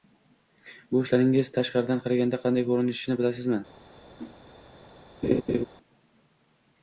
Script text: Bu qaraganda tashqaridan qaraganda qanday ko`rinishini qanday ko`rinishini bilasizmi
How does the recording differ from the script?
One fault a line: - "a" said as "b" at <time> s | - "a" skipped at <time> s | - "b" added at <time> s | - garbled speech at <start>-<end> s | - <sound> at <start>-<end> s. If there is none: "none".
- "qaraganda" said as "ishlaringiz" at 1.0 s
- "qanday ko`rinishini" skipped at 3.2 s
- whoosh at 4.2-4.4 s
- laugh at 5.2-5.6 s